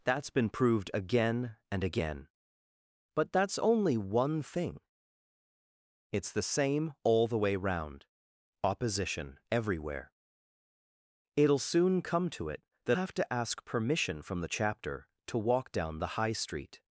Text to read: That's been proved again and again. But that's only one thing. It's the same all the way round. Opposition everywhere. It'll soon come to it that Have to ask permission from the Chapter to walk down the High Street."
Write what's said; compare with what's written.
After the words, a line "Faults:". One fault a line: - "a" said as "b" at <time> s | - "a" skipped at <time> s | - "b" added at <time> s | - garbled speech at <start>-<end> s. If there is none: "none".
That's been proved again and again. But that's only one thing. It's the same all the way round. Opposition everywhere. It'll soon come to it that Have to ask permission from the Chapter to walk down the High Street."
Faults:
none